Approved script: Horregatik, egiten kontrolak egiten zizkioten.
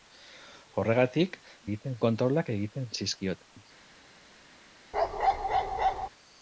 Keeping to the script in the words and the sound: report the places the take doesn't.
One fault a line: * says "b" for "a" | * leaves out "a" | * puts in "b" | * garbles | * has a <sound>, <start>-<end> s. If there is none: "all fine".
* has a dropout, 3.4-3.6 s
* has a bark, 4.9-6.1 s